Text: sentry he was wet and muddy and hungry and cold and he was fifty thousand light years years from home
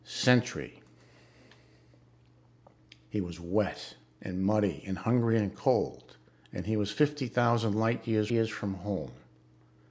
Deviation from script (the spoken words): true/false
false